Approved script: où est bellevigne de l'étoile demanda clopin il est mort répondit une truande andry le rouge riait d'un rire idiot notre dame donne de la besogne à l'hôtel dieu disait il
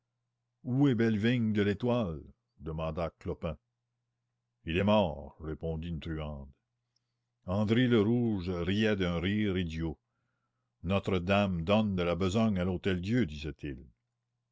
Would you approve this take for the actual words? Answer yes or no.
yes